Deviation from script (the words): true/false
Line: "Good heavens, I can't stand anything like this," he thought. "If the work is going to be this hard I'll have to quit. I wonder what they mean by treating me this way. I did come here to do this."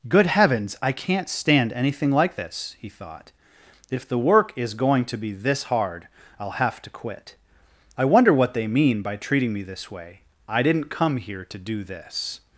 true